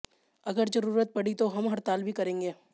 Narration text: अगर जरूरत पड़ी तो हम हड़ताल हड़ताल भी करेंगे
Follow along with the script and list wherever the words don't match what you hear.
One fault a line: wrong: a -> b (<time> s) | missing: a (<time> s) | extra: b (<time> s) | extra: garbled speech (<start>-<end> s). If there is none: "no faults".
missing: हड़ताल (2.0 s)